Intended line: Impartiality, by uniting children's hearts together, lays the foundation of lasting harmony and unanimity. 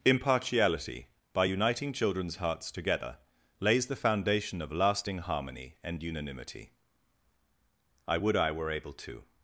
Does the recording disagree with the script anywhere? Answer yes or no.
yes